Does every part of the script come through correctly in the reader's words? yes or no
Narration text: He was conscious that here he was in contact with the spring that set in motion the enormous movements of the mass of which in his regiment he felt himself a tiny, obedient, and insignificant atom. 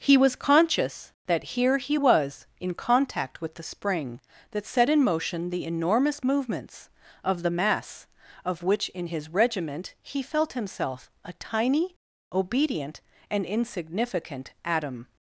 yes